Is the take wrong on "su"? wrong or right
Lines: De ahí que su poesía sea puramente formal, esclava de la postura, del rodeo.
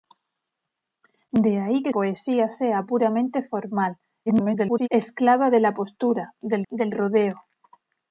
wrong